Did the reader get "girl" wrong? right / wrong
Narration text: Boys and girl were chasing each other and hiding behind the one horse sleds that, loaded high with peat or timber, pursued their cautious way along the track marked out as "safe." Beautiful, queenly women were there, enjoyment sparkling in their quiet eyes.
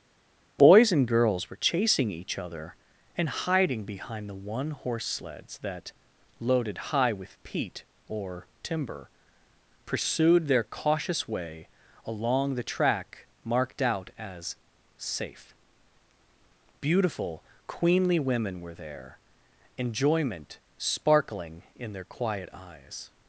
wrong